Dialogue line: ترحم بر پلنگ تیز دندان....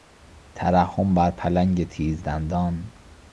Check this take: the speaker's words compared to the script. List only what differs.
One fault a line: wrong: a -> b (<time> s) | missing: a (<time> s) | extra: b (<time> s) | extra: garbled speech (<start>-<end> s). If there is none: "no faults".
no faults